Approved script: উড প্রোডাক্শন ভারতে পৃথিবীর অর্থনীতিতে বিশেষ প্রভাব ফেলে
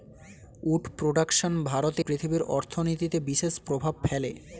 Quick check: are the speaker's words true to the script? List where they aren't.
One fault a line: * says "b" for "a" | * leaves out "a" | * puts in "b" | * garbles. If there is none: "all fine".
all fine